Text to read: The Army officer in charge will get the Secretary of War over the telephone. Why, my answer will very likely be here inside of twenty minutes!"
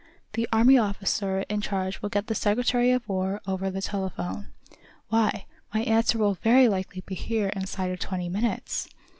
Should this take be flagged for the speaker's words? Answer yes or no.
no